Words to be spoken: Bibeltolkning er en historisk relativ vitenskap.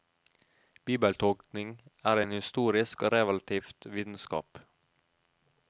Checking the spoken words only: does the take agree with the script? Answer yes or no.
no